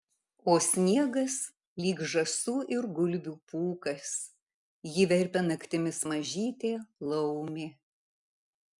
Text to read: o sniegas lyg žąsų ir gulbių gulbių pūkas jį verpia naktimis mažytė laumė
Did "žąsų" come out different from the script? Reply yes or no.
no